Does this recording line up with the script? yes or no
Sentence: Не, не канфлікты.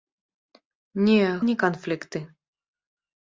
yes